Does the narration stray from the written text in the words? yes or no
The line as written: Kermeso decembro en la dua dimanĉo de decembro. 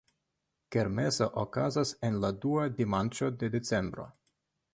yes